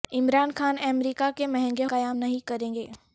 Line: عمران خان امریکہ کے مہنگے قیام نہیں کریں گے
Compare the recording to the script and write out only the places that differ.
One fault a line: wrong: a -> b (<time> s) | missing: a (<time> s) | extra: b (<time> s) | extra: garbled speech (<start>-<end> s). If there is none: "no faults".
no faults